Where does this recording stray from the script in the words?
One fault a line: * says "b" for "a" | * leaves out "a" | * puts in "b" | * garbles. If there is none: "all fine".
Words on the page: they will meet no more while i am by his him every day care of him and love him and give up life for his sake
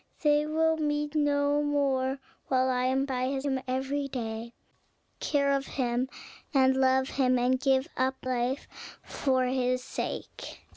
all fine